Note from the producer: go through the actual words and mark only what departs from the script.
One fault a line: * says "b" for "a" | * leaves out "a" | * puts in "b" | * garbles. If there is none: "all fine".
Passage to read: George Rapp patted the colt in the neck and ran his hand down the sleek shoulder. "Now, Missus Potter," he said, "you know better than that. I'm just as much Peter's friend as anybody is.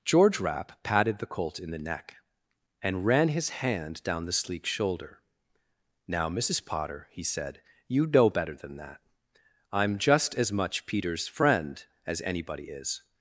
all fine